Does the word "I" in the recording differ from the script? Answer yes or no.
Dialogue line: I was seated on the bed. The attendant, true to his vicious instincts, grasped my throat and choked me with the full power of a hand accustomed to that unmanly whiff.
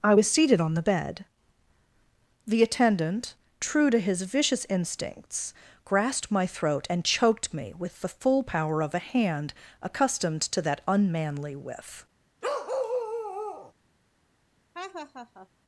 no